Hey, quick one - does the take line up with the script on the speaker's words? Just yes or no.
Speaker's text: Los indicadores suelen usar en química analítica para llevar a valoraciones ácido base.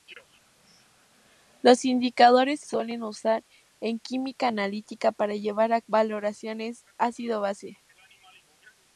yes